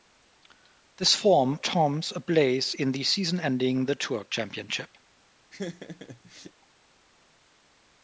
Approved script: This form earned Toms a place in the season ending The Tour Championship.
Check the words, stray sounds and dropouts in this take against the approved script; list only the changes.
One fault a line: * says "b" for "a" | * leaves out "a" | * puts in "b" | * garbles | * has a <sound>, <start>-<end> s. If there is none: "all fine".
* leaves out "earned"
* has a laugh, 5.5-6.5 s